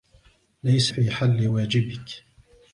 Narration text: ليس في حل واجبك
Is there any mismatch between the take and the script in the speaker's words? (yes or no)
no